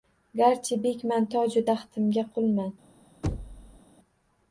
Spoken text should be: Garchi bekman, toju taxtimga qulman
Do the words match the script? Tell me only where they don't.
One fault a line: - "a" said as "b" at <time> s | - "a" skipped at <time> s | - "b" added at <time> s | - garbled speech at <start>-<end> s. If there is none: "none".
none